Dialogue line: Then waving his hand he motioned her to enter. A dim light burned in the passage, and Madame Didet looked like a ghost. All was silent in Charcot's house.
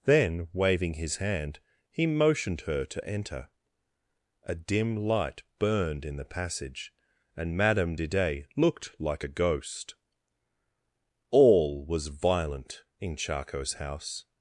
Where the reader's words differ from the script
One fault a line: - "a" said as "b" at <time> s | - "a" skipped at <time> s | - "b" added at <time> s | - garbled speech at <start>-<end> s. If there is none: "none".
- "silent" said as "violent" at 12.1 s